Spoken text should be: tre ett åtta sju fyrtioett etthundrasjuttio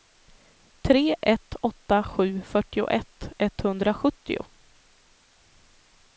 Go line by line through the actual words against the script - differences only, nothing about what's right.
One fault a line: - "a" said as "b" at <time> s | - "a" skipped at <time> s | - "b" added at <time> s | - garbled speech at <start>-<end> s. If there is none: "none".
none